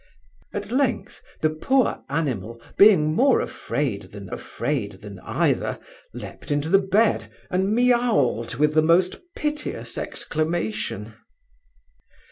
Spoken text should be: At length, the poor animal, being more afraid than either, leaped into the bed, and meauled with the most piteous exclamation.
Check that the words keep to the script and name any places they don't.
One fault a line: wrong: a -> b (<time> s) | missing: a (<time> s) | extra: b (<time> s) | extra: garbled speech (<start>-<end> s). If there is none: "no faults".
extra: afraid than (4.3 s)